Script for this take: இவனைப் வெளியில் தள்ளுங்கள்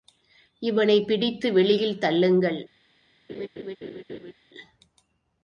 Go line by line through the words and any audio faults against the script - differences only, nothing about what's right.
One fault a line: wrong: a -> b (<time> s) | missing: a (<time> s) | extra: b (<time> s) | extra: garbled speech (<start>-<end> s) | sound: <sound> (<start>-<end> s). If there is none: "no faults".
extra: பிடித்து (1.1 s)
sound: laugh (3.3-4.3 s)